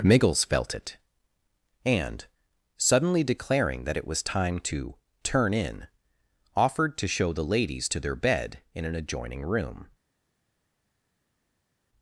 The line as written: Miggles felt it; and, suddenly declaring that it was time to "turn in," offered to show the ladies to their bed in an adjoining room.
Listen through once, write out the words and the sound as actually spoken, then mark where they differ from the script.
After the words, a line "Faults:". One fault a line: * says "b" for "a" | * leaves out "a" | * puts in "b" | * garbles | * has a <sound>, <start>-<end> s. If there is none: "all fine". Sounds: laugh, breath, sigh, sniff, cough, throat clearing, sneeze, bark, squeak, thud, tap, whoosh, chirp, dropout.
Miggles felt it; and, suddenly declaring that it was time to "turn in," offered to show the ladies to their bed in an adjoining room.
Faults:
all fine